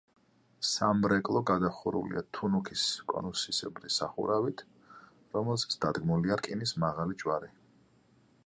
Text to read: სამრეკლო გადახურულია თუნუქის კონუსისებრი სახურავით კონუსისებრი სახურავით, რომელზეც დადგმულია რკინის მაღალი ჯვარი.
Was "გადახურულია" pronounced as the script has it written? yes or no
yes